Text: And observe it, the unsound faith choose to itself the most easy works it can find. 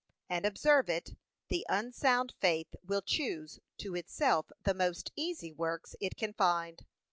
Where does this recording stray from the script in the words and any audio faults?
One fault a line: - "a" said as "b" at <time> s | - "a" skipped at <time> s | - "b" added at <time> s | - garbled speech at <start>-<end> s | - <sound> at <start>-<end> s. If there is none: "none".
- "will" added at 2.8 s